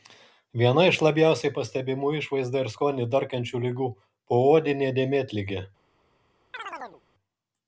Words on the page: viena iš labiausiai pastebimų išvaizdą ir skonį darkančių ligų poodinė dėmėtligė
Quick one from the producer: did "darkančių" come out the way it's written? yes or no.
yes